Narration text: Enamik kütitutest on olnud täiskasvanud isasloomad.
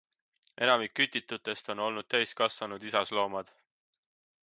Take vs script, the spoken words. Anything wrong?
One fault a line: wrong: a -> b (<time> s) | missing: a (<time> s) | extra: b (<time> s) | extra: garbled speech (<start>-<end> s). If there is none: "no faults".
no faults